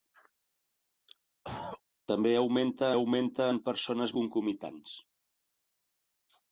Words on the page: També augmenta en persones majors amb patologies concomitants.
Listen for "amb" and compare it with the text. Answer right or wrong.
wrong